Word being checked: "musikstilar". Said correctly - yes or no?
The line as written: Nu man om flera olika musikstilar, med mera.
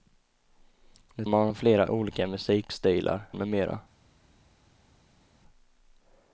yes